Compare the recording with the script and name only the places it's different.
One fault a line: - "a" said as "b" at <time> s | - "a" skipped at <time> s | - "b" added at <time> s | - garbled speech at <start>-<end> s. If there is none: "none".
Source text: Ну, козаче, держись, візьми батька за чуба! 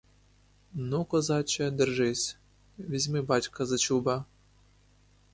none